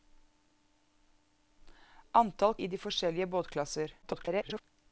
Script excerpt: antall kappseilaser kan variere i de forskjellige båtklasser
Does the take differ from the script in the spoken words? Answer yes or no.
yes